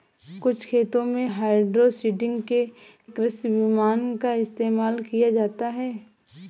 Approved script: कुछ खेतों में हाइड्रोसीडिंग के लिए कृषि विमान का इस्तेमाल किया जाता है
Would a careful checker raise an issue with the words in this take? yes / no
yes